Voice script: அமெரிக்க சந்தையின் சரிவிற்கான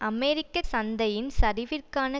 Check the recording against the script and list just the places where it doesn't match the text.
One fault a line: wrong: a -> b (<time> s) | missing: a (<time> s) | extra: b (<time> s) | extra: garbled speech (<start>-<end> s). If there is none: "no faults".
no faults